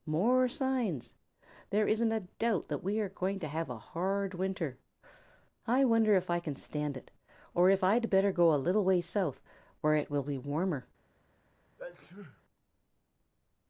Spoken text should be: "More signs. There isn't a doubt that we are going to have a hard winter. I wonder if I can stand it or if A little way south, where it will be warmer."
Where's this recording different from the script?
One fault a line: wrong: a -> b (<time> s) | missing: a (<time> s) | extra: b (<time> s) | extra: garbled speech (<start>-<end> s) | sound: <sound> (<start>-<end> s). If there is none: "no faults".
extra: I'd better go (7.8 s)
sound: sneeze (11.8-12.4 s)